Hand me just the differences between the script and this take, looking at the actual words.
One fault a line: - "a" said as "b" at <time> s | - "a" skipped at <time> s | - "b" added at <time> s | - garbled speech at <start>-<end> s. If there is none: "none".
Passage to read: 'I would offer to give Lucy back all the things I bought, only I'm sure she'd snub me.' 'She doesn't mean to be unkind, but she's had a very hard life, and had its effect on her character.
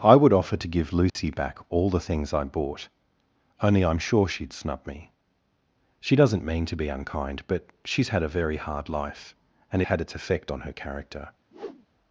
none